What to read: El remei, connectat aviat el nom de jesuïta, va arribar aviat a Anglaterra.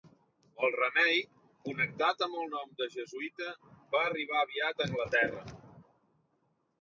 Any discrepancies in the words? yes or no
yes